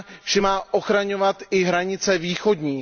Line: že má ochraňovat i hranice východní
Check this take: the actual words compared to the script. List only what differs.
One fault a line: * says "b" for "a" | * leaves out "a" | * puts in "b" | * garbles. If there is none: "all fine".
all fine